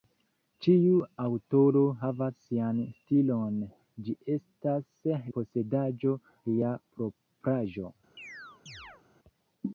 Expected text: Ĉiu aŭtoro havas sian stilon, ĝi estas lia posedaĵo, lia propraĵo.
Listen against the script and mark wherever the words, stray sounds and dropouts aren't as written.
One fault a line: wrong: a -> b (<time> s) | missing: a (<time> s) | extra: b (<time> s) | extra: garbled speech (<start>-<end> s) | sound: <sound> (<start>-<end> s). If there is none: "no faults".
missing: lia (5.0 s)
sound: chirp (8.2-9.0 s)